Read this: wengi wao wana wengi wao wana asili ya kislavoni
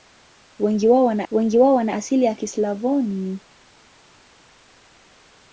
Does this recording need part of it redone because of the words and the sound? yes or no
no